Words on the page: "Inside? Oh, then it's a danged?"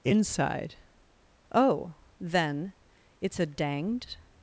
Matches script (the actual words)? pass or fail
pass